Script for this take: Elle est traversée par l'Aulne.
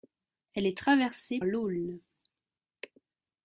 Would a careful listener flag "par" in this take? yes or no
yes